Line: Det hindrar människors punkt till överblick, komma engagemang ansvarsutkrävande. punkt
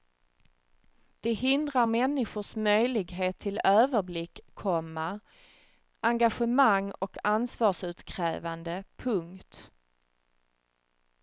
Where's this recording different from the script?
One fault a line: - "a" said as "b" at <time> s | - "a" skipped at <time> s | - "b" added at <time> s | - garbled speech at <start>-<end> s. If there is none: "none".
- "punkt" said as "möjlighet" at 2.5 s
- "och" added at 6.9 s